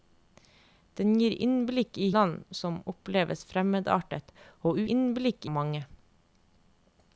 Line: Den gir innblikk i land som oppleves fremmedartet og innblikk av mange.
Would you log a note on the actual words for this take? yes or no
no